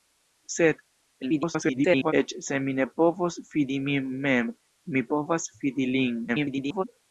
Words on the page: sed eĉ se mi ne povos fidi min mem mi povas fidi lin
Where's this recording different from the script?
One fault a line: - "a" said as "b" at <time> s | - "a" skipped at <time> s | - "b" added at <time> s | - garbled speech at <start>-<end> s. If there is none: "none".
- garbled speech at 1.2-2.1 s
- garbled speech at 6.3-6.8 s